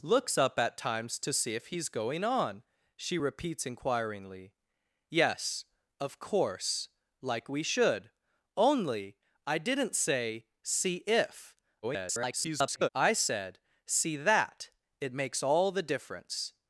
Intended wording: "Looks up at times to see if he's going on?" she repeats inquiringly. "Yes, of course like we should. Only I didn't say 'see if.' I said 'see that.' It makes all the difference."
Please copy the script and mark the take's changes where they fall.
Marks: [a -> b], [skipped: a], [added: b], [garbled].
"Looks up at times to see if he's going on?" she repeats inquiringly. "Yes, of course like we should. Only I didn't say 'see if.' [garbled] I said 'see that.' It makes all the difference."